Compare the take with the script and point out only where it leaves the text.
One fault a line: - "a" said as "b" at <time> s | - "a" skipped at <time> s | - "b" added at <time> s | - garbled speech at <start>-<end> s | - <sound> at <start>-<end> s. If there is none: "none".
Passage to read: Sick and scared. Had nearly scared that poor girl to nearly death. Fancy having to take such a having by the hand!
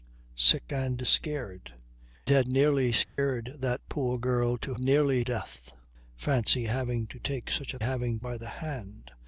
- dropout at 3.0-3.2 s